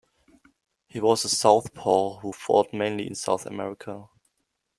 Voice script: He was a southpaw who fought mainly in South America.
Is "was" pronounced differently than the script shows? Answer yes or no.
no